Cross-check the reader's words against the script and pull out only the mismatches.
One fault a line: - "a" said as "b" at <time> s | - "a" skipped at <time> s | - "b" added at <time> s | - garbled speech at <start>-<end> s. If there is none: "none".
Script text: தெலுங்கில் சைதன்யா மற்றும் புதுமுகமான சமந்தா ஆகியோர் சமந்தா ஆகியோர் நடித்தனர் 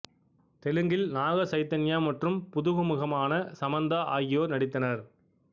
- "நாக" added at 1.1 s
- "சமந்தா ஆகியோர்" skipped at 4.5 s